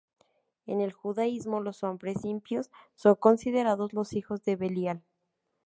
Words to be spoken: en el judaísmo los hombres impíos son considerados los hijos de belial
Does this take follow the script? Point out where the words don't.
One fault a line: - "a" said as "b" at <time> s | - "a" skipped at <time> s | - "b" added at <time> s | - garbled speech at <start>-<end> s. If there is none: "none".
none